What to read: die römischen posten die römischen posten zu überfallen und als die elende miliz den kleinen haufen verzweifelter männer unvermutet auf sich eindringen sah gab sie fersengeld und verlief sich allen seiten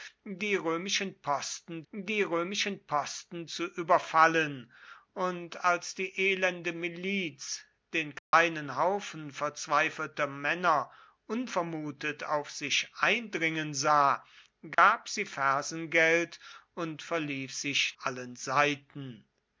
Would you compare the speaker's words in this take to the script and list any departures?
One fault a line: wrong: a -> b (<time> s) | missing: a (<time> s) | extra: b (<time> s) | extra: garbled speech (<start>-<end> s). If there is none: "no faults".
no faults